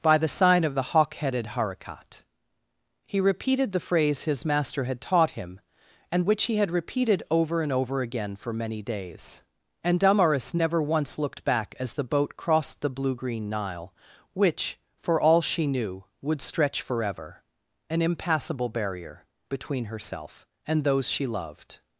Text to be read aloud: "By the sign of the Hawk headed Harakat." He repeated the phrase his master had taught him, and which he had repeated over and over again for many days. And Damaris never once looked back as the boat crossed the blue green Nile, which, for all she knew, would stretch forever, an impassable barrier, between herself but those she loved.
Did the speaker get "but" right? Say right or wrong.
wrong